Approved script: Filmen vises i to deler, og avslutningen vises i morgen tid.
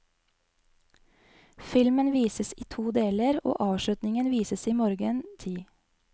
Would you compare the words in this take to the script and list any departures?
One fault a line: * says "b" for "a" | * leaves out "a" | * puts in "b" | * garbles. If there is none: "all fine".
all fine